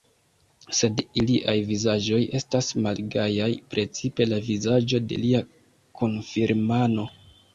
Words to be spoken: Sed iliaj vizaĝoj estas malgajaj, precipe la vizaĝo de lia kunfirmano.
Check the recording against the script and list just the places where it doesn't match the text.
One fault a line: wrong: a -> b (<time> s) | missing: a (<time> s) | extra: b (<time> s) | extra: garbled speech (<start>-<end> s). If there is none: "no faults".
no faults